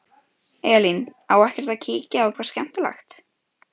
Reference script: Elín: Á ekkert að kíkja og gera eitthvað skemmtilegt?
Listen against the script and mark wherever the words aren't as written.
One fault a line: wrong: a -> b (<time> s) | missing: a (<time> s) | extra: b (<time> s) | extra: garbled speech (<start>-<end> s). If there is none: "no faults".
missing: gera (2.4 s)